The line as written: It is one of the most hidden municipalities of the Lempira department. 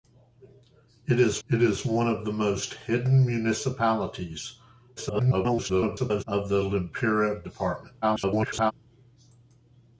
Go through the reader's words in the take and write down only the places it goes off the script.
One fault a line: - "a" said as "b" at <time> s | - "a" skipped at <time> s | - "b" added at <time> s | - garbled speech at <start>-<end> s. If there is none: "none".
- "it is" added at 1.5 s
- garbled speech at 5.0-6.2 s
- garbled speech at 8.0-8.7 s